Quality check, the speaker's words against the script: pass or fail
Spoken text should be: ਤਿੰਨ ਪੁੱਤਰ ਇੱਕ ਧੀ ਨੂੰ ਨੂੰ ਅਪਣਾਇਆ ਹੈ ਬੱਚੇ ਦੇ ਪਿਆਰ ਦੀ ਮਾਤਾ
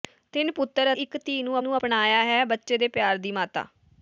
pass